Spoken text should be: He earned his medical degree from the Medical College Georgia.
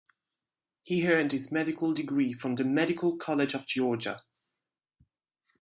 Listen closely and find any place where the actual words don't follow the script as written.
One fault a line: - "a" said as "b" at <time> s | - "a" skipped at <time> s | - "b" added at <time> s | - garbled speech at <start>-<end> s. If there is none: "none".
- "of" added at 3.5 s